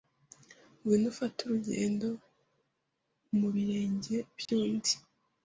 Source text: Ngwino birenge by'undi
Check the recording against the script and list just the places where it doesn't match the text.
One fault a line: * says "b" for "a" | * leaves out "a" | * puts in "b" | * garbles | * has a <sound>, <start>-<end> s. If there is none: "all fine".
* puts in "ufate urugendo mu"
* has a dropout, 4.5-4.5 s